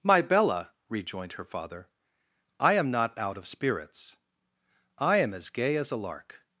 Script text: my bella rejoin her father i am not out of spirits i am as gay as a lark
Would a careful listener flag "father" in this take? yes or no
no